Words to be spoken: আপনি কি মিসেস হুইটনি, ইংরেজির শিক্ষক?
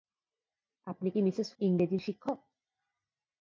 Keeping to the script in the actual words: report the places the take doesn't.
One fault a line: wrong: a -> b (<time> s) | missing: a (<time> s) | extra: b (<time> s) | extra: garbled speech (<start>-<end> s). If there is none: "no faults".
missing: হুইটনি (1.5 s)